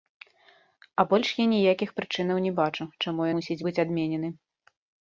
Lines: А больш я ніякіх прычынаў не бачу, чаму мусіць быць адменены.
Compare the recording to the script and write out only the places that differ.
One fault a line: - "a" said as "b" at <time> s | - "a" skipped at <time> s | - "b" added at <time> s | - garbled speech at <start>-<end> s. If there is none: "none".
none